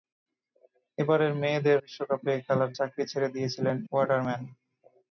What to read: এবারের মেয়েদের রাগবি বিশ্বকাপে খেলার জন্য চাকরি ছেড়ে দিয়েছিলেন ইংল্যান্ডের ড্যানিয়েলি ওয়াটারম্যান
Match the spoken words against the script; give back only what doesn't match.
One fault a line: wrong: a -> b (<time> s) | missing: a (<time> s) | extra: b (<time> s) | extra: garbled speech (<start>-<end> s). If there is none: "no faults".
missing: রাগবি (1.8 s)
missing: জন্য (2.7 s)
missing: ইংল্যান্ডের ড্যানিয়েলি (3.8 s)